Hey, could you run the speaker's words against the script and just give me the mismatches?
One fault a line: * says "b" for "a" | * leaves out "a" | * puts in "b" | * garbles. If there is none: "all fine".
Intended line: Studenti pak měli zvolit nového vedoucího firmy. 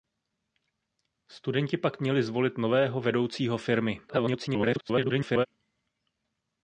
* garbles